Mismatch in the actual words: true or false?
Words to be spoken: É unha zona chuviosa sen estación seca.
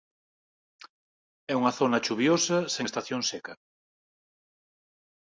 false